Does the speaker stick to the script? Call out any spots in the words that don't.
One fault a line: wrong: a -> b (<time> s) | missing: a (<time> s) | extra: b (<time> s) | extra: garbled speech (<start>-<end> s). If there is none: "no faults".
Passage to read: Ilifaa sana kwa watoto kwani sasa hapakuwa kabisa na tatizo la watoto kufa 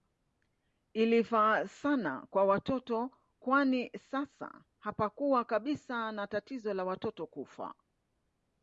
no faults